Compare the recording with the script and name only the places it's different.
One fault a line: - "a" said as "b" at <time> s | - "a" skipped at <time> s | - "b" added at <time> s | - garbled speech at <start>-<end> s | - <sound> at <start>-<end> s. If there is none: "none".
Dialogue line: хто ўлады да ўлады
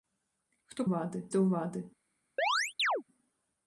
- chirp at 2.4-3.0 s